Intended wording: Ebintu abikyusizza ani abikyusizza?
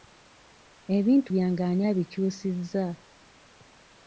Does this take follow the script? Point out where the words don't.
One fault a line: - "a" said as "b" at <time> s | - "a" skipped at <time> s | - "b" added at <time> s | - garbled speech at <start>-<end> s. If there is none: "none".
- "abikyusizza" said as "byange" at 1.3 s